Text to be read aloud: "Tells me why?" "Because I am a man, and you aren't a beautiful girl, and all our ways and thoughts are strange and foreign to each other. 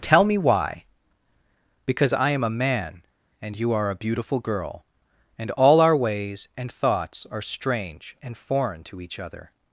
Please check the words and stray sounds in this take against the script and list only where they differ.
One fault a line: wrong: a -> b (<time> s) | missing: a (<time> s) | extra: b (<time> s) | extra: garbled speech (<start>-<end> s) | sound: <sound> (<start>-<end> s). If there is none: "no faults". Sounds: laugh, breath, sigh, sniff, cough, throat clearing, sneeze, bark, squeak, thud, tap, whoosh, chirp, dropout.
wrong: Tells -> Tell (0.0 s)
wrong: aren't -> are (3.7 s)